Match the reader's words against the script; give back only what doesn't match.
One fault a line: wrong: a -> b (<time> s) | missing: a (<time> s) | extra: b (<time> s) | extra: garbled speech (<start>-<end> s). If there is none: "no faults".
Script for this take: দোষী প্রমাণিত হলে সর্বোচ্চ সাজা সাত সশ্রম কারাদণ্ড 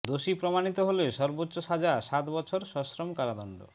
extra: বছর (2.3 s)